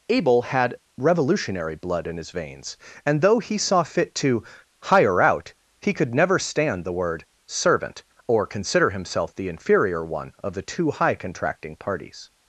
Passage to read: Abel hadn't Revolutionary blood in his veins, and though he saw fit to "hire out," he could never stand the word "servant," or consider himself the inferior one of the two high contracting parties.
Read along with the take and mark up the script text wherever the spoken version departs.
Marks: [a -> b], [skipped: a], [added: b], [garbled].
Abel [hadn't -> had] Revolutionary blood in his veins, and though he saw fit to "hire out," he could never stand the word "servant," or consider himself the inferior one of the two high contracting parties.